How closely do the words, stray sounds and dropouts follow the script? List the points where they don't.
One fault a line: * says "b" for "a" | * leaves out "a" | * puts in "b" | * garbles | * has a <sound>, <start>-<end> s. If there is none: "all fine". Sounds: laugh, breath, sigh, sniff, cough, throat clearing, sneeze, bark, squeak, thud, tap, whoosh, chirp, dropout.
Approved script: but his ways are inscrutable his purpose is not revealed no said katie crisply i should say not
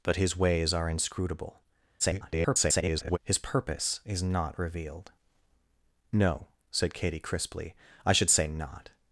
* garbles